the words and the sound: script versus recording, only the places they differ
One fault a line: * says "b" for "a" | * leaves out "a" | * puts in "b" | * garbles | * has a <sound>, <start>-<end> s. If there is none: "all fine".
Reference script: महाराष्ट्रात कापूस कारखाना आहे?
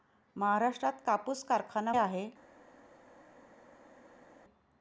all fine